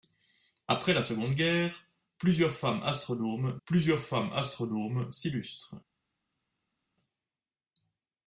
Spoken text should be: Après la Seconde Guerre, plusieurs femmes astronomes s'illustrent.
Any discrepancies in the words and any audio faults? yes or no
yes